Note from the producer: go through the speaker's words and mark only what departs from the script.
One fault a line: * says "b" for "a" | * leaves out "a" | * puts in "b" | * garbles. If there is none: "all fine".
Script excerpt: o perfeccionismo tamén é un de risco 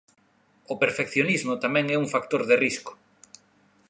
* puts in "factor"